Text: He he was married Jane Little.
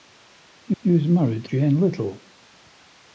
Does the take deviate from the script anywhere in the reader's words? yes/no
no